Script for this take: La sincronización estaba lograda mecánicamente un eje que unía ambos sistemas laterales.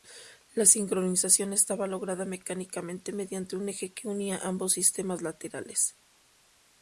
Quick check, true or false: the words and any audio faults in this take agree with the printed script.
false